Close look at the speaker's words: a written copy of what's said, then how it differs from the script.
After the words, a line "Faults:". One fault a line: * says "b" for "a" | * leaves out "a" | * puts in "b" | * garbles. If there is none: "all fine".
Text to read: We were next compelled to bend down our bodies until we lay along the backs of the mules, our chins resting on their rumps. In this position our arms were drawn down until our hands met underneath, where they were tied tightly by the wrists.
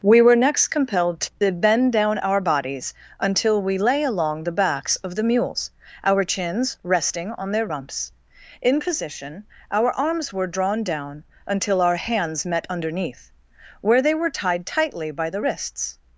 We were next compelled to bend down our bodies until we lay along the backs of the mules, our chins resting on their rumps. In position our arms were drawn down until our hands met underneath, where they were tied tightly by the wrists.
Faults:
* leaves out "this"